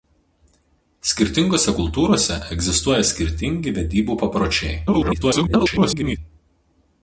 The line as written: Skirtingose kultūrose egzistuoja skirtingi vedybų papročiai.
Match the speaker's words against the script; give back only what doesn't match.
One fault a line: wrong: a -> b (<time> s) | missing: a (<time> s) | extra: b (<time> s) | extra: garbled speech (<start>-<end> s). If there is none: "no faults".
extra: garbled speech (4.9-6.2 s)